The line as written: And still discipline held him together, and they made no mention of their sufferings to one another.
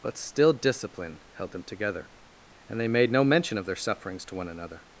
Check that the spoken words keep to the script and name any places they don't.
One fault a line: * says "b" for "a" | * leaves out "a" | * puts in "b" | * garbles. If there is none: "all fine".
* says "But" for "And"
* says "them" for "him"